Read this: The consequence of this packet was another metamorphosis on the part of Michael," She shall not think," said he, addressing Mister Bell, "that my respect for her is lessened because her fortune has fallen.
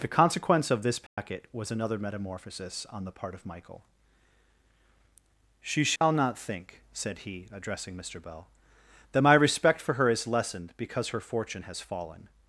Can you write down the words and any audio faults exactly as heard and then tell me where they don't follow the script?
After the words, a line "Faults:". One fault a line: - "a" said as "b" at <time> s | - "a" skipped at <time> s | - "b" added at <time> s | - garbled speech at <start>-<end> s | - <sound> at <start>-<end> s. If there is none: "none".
The consequence of this packet was another metamorphosis on the part of Michael," She shall not think," said he, addressing Mister Bell, "that my respect for her is lessened because her fortune has fallen.
Faults:
- dropout at 1.1-1.2 s
- dropout at 6.0-6.0 s